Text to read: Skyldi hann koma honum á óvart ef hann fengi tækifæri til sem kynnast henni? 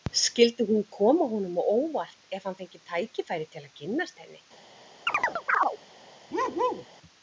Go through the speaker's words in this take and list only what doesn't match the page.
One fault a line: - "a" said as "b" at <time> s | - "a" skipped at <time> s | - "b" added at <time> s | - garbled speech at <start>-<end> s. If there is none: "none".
- "hann" said as "hún" at 0.7 s
- "sem" said as "að" at 3.7 s